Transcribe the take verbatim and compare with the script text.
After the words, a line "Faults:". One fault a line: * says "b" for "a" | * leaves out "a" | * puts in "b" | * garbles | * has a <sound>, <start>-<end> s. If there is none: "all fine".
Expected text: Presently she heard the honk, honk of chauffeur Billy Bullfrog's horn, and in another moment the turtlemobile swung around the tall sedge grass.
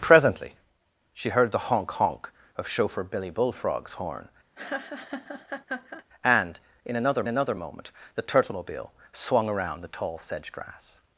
Presently she heard the honk, honk of chauffeur Billy Bullfrog's horn, and in another another moment the turtlemobile swung around the tall sedge grass.
Faults:
* has a laugh, 4.6-6.0 s
* puts in "another"